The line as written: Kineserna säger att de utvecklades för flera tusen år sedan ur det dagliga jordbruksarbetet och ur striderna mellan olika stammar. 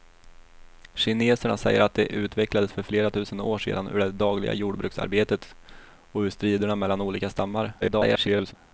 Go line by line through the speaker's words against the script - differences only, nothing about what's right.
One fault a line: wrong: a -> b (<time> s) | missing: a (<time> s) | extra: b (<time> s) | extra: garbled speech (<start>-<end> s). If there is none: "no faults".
extra: garbled speech (7.8-8.5 s)